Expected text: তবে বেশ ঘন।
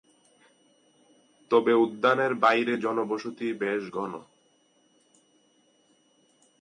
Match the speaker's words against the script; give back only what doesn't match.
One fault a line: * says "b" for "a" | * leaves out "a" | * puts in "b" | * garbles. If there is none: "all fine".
* puts in "উদ্যানের বাইরে জনবসতি"